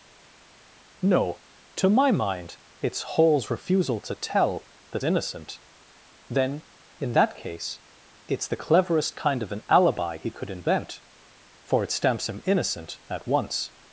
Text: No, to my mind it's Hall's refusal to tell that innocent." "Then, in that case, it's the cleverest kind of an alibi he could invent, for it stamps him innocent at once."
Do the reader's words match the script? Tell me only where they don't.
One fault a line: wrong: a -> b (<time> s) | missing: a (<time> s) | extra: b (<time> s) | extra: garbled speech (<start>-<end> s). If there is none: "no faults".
no faults